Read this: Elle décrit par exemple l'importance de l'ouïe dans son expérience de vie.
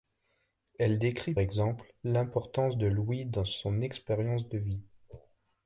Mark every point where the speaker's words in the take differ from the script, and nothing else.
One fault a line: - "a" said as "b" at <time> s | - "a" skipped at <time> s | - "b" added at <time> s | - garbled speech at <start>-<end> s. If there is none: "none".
- "par" skipped at 1.4 s